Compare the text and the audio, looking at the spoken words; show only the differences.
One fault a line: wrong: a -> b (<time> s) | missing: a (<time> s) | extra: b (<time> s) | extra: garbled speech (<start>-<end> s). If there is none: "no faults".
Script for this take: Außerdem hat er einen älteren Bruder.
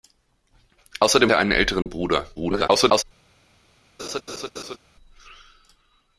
missing: hat (1.3 s)
extra: garbled speech (2.3-3.0 s)